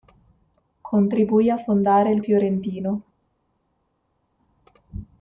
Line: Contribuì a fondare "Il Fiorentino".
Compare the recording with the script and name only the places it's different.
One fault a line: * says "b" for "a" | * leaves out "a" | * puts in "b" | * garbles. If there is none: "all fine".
all fine